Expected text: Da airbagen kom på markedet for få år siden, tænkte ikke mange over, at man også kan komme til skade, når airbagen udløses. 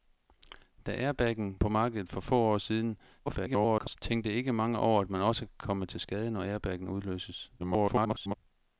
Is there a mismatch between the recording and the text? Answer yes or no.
yes